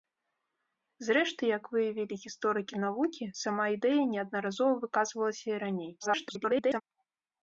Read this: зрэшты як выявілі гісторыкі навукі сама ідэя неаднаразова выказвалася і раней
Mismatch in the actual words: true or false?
true